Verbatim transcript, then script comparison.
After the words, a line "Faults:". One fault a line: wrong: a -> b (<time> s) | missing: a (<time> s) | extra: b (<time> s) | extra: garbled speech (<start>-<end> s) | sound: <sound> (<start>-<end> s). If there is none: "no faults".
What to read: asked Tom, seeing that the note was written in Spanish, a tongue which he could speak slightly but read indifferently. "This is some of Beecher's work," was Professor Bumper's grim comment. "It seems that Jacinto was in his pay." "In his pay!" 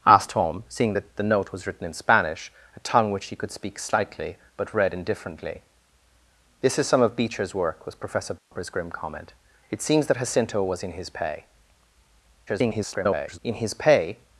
asked Tom, seeing that the note was written in Spanish, a tongue which he could speak slightly but read indifferently. "This is some of Beecher's work," was Professor Bumper's grim comment. "It seems that Jacinto was in his pay." [garbled] "In his pay!"
Faults:
sound: dropout (8.4-8.5 s)
extra: garbled speech (12.5-13.4 s)